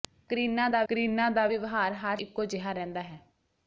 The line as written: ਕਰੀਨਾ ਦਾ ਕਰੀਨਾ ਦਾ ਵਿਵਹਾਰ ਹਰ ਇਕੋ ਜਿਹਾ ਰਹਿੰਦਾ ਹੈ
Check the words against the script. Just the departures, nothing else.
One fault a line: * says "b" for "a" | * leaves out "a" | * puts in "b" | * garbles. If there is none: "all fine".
all fine